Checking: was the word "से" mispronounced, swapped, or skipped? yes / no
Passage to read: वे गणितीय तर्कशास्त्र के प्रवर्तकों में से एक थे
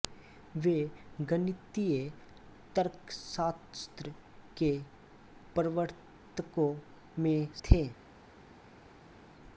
yes